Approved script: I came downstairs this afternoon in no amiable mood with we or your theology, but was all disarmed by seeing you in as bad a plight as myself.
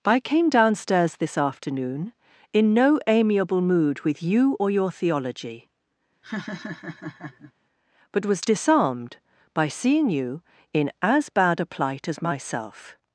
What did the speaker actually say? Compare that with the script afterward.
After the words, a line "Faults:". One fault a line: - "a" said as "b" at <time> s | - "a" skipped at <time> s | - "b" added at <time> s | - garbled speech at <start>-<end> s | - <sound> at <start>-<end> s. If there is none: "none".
I came downstairs this afternoon in no amiable mood with you or your theology, but was disarmed by seeing you in as bad a plight as myself.
Faults:
- "we" said as "you" at 4.2 s
- laugh at 6.2-7.5 s
- "all" skipped at 8.4 s